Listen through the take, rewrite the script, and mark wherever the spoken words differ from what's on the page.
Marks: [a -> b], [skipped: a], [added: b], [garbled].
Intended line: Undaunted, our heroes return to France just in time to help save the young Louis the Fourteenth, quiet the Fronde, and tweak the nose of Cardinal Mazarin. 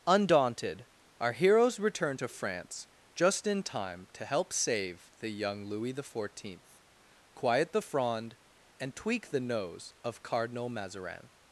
Undaunted, our heroes return to France just in time to help save the young Louis the Fourteenth, quiet the Fronde, and tweak the nose of Cardinal Mazarin.